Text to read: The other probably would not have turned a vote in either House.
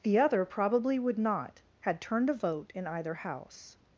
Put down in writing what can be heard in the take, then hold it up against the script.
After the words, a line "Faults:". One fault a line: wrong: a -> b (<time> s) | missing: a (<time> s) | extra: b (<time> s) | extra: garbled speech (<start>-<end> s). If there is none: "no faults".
The other probably would not had turned a vote in either House.
Faults:
wrong: have -> had (1.8 s)